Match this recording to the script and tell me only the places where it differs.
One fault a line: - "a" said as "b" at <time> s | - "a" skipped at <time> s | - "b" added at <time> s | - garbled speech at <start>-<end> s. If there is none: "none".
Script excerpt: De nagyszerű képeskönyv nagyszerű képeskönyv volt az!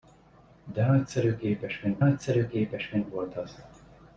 none